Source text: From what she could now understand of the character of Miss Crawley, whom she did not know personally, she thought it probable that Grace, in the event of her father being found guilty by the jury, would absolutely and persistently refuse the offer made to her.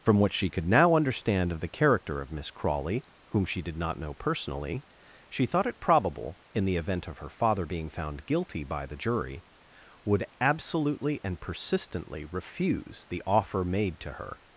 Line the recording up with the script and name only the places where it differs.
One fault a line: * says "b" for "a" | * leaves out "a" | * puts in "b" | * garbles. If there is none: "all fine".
* leaves out "that Grace"